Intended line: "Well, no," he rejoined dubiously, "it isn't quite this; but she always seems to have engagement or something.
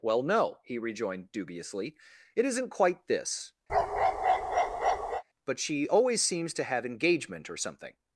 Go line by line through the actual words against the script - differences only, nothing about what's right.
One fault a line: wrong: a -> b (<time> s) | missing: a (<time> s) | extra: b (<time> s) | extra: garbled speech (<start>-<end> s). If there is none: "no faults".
no faults